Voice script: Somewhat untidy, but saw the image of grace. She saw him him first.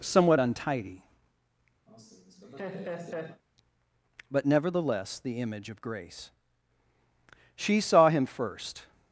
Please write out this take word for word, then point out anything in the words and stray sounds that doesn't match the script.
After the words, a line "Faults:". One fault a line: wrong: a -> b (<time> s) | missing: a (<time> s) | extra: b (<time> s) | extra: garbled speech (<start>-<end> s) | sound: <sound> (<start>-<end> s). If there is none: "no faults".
Somewhat untidy, but nevertheless the image of grace. She saw him first.
Faults:
sound: laugh (1.9-3.4 s)
wrong: saw -> nevertheless (4.5 s)
missing: him (8.3 s)